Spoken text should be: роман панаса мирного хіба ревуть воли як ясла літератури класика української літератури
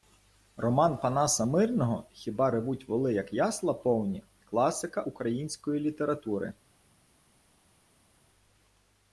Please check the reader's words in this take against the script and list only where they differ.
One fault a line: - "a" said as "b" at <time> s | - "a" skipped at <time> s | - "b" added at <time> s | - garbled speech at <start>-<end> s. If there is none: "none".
- "літератури" said as "повні" at 3.7 s